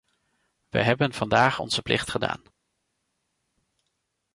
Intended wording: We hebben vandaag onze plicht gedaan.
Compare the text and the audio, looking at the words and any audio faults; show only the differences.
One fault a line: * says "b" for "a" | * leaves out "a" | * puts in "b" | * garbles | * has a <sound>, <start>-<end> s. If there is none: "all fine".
all fine